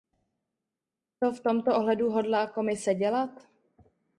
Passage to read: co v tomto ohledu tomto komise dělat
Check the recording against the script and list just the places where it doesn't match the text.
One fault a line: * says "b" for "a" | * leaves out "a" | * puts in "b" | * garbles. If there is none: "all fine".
* says "hodlá" for "tomto"